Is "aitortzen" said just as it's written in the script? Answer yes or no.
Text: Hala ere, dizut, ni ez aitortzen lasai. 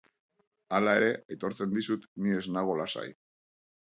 no